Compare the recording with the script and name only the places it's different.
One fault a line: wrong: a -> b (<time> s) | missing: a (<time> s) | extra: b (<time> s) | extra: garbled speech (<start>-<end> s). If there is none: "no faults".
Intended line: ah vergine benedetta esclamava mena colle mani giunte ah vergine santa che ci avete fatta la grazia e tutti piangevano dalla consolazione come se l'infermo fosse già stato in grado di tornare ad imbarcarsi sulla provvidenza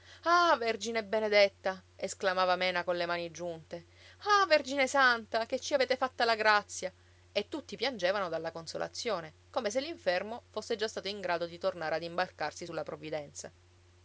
no faults